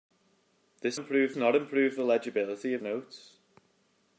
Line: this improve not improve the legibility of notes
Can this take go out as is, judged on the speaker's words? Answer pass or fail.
pass